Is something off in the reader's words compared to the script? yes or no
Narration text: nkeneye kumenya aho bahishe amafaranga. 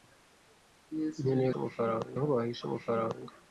yes